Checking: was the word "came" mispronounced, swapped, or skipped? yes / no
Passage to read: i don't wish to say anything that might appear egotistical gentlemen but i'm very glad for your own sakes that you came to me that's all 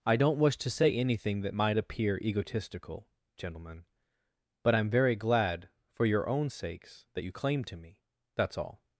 yes